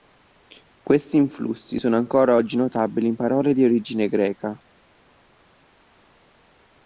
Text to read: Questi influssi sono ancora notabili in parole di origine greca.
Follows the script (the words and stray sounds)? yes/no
no